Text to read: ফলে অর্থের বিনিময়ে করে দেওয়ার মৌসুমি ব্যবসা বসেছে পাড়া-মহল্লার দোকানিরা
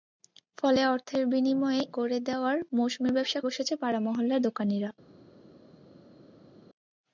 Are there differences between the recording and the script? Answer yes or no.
no